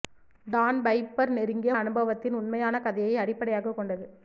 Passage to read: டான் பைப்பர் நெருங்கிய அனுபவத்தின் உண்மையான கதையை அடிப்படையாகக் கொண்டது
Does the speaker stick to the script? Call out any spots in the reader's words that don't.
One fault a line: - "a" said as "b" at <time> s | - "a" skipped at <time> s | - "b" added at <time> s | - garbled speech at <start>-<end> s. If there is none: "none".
none